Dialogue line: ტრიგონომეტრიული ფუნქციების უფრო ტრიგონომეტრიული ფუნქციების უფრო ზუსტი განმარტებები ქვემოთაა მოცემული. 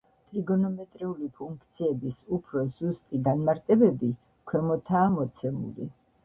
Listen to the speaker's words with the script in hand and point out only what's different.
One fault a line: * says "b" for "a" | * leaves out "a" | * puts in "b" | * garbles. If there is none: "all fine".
* leaves out "ტრიგონომეტრიული ფუნქციების უფრო"